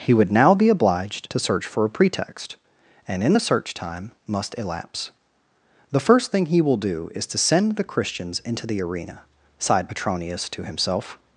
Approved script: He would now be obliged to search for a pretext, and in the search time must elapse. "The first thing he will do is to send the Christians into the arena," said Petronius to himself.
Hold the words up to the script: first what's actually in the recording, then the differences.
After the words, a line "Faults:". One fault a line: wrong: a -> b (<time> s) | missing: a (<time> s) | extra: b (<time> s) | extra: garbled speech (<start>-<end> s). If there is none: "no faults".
He would now be obliged to search for a pretext, and in the search time must elapse. "The first thing he will do is to send the Christians into the arena," sighed Petronius to himself.
Faults:
wrong: said -> sighed (9.6 s)